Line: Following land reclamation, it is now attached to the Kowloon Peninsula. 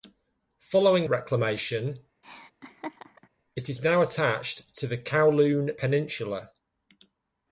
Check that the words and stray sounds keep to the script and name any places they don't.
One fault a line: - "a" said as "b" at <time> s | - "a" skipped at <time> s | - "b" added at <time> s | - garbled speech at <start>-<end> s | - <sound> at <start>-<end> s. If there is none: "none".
- "land" skipped at 1.1 s
- laugh at 2.2-3.3 s